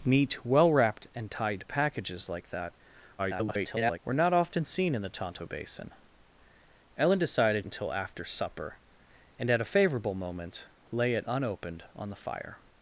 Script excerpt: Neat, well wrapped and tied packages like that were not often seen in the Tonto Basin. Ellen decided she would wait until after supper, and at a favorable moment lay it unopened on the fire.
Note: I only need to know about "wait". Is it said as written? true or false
false